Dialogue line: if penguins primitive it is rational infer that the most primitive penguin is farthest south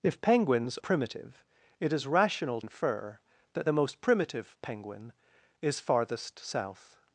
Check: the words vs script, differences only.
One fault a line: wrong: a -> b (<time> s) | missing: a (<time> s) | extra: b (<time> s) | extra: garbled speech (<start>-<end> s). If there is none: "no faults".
no faults